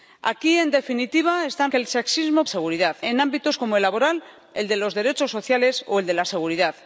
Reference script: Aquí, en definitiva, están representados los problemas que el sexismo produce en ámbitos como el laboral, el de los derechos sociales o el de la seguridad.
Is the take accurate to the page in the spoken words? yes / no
no